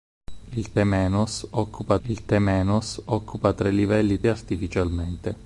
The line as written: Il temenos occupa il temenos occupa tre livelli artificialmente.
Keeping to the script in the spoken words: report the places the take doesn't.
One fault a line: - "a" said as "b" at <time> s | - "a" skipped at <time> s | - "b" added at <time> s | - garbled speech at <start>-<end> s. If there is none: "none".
none